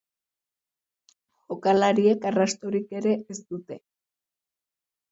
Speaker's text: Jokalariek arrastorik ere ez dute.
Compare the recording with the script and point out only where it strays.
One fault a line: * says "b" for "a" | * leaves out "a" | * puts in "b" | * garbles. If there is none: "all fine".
all fine